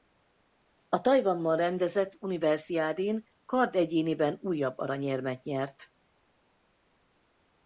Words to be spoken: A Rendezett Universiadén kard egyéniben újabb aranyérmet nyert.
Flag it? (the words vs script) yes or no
yes